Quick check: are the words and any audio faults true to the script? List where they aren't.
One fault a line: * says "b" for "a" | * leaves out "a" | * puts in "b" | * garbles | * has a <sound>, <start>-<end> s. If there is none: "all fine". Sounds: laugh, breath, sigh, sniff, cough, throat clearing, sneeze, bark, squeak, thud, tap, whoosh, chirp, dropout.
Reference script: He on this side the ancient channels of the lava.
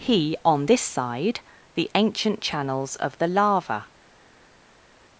all fine